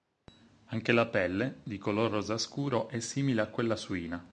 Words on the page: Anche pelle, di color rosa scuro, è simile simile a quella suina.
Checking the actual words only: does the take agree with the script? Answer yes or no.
no